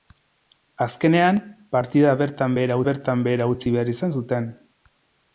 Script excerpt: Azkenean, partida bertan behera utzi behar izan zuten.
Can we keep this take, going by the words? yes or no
no